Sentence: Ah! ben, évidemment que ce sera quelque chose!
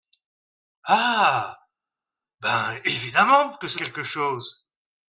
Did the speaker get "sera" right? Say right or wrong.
wrong